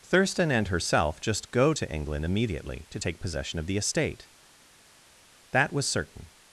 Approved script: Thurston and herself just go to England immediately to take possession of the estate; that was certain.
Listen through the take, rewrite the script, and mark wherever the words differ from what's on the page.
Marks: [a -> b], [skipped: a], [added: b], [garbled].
Thurston and herself just go to England immediately to take possession of the estate; that was certain.